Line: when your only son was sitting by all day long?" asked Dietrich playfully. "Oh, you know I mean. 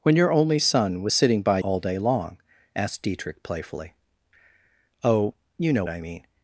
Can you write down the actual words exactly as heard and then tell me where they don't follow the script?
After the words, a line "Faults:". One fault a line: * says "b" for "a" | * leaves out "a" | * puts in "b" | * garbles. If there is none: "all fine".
when your only son was sitting by all day long?" asked Dietrich playfully. "Oh, you know I mean.
Faults:
all fine